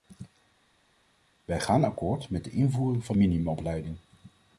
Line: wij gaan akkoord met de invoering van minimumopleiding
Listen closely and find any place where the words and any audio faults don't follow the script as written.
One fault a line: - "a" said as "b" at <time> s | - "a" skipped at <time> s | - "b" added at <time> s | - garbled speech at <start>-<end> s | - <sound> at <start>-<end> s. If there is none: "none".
none